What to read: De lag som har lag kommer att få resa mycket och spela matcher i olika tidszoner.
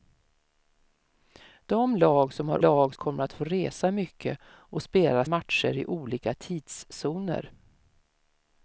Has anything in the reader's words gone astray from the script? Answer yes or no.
no